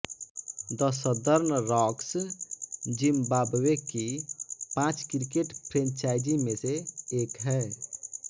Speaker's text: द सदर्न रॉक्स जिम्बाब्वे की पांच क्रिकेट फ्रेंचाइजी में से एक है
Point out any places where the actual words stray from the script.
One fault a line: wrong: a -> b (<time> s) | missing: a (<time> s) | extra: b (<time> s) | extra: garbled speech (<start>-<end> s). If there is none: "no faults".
no faults